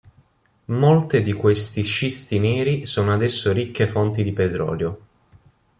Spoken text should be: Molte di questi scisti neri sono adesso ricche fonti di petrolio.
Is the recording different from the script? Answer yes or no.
no